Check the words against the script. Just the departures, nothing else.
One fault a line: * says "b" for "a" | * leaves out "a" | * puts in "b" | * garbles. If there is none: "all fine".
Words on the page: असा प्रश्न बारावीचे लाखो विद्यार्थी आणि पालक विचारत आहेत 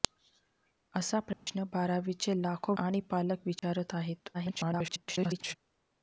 * leaves out "विद्यार्थी"
* garbles